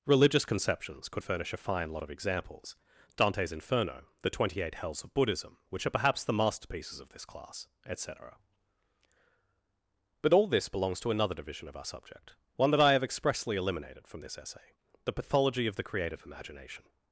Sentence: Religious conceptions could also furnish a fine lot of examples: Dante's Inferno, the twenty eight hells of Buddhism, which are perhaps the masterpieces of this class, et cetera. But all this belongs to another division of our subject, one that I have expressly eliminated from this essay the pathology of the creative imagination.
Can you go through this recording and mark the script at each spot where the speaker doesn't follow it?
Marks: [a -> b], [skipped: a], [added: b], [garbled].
Religious conceptions could [skipped: also] furnish a fine lot of examples: Dante's Inferno, the twenty eight hells of Buddhism, which are perhaps the masterpieces of this class, et cetera. But all this belongs to another division of our subject, one that I have expressly eliminated from this essay the pathology of the creative imagination.